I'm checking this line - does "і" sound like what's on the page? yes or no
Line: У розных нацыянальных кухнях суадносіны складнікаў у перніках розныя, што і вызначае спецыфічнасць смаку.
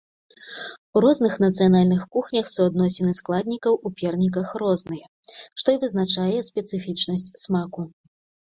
yes